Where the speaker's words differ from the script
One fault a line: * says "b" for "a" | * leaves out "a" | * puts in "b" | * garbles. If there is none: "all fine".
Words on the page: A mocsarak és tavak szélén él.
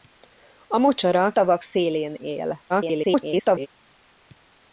* leaves out "és"
* garbles